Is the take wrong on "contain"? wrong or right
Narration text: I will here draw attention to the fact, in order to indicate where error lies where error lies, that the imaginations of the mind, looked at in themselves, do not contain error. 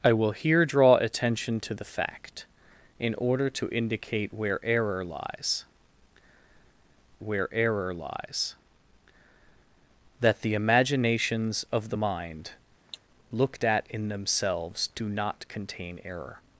right